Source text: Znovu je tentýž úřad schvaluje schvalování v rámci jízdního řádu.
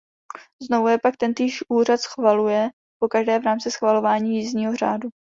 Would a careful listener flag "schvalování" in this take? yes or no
yes